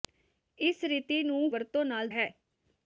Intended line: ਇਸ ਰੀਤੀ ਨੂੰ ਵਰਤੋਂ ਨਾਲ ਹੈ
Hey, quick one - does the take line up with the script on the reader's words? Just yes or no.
yes